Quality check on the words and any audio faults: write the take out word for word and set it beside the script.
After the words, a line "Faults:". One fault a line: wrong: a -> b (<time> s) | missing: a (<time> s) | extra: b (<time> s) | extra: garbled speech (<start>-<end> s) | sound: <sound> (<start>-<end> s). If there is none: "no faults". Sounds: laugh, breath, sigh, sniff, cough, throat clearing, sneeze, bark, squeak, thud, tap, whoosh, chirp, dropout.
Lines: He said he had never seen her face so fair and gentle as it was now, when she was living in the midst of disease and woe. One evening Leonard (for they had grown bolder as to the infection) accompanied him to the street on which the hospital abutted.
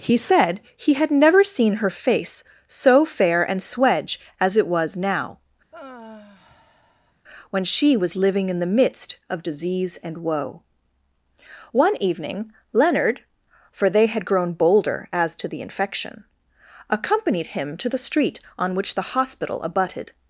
He said he had never seen her face so fair and swedge as it was now, when she was living in the midst of disease and woe. One evening Leonard (for they had grown bolder as to the infection) accompanied him to the street on which the hospital abutted.
Faults:
wrong: gentle -> swedge (3.6 s)
sound: sigh (5.7-7.1 s)